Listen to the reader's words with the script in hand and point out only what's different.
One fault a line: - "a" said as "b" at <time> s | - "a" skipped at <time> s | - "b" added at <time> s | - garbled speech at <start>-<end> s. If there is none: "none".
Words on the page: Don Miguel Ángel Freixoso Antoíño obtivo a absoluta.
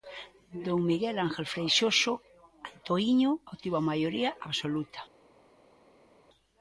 - "maioría" added at 3.9 s